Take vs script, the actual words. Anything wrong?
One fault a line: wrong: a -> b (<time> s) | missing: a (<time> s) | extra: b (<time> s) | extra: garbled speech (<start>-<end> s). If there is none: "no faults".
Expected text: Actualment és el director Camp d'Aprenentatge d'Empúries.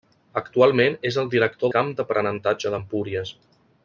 no faults